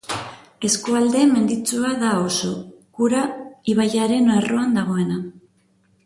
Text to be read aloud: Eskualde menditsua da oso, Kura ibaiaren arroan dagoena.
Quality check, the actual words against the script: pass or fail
pass